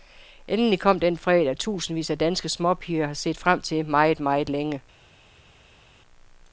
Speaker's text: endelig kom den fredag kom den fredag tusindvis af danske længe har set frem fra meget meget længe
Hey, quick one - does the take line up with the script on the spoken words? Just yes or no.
no